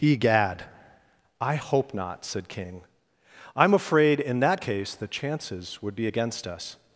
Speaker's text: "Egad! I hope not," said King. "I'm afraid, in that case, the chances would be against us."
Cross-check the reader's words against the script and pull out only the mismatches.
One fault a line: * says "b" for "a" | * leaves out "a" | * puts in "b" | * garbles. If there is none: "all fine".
all fine